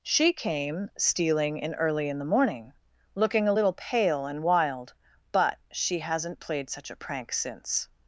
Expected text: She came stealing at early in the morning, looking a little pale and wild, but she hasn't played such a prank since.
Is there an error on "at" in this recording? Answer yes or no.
yes